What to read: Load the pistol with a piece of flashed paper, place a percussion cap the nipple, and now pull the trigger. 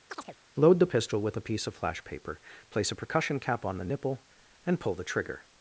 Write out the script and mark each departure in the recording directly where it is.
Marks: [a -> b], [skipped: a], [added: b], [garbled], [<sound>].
[chirp] Load the pistol with a piece of [flashed -> flash] paper, place a percussion cap [added: on] the nipple, and [skipped: now] pull the trigger.